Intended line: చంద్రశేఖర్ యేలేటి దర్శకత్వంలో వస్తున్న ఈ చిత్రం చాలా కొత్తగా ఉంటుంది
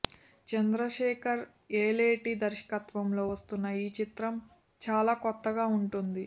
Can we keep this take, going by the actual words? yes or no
yes